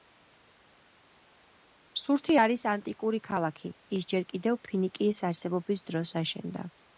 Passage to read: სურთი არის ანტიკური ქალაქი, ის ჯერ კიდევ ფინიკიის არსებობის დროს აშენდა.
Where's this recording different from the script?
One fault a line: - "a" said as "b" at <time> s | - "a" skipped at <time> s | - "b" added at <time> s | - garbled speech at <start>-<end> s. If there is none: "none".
none